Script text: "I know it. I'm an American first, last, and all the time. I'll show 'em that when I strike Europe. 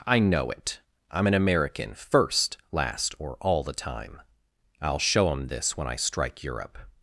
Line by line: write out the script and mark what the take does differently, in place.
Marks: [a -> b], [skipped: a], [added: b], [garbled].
"I know it. I'm an American first, last, [and -> or] all the time. I'll show 'em [that -> this] when I strike Europe.